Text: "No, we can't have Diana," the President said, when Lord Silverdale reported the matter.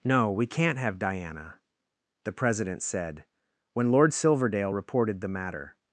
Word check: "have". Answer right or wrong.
right